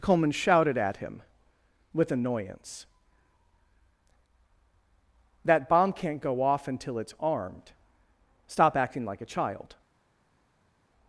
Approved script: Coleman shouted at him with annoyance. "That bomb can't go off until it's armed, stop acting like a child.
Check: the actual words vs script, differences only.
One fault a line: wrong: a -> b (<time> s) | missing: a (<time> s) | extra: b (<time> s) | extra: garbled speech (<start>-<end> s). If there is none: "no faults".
no faults